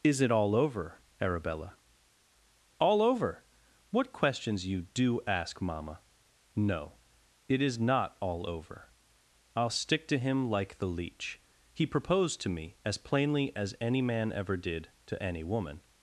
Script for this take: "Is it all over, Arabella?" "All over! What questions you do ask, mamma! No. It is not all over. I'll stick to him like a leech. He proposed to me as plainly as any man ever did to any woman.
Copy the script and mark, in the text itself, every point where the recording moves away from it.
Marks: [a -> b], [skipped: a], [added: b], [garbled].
"Is it all over, Arabella?" "All over! What questions you do ask, mamma! No. It is not all over. I'll stick to him like [a -> the] leech. He proposed to me as plainly as any man ever did to any woman.